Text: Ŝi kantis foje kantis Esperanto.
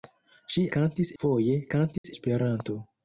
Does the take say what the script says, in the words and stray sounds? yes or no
no